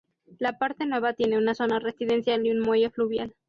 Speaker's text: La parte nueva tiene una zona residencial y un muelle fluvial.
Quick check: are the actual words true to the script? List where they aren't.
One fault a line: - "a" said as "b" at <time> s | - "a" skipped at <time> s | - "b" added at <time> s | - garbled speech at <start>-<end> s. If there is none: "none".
none